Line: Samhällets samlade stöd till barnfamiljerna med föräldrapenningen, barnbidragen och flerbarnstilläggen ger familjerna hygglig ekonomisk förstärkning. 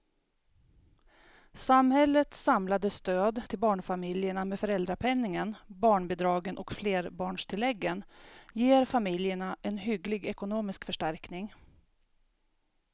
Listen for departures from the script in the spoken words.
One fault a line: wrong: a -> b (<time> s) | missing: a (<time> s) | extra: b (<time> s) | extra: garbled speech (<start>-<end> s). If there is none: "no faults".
extra: en (9.6 s)